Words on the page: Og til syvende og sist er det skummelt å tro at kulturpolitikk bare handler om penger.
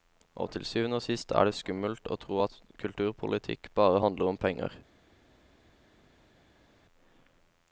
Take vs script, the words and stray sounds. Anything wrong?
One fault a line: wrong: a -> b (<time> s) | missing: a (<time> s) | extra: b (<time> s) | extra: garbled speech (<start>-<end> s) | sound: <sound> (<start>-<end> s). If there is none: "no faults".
no faults